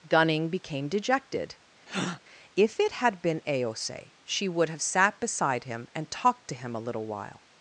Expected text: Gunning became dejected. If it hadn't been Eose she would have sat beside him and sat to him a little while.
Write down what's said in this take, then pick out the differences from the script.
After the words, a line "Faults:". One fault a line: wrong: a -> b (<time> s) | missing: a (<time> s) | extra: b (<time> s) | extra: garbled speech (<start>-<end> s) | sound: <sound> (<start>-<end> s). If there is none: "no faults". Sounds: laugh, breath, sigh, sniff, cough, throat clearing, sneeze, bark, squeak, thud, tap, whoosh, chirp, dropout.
Gunning became dejected. If it had been Eose she would have sat beside him and talked to him a little while.
Faults:
sound: breath (1.9-2.2 s)
wrong: hadn't -> had (2.9 s)
wrong: sat -> talked (6.1 s)